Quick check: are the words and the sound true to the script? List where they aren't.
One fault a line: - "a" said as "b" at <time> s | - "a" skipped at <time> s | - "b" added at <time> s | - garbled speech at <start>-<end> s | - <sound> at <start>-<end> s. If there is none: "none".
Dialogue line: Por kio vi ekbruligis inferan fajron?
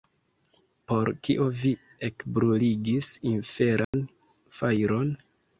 - dropout at 3.8-3.9 s